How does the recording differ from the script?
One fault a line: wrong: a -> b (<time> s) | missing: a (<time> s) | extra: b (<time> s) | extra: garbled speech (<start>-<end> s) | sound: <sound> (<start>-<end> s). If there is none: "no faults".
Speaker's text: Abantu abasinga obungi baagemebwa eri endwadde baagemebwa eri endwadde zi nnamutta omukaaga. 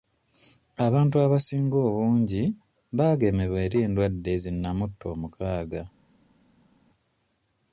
missing: baagemebwa eri endwadde (4.3 s)